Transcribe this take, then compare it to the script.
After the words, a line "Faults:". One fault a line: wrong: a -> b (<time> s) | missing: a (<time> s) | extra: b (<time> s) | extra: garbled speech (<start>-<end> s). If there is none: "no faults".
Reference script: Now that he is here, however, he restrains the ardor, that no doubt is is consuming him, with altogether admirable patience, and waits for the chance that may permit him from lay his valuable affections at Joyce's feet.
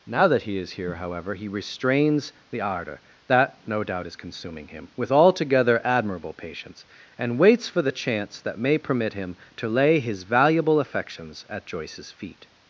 Now that he is here, however, he restrains the ardor, that no doubt is consuming him, with altogether admirable patience, and waits for the chance that may permit him to lay his valuable affections at Joyce's feet.
Faults:
missing: is (4.2 s)
wrong: from -> to (9.6 s)